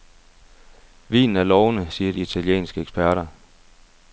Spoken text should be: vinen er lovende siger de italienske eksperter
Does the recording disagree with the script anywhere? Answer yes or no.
no